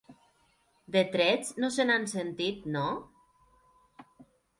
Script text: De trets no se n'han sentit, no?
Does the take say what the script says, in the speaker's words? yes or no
yes